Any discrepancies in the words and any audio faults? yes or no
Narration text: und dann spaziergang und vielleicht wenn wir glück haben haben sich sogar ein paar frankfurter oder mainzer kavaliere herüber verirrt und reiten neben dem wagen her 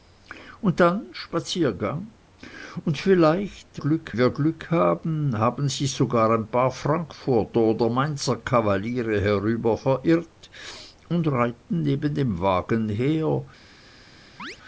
yes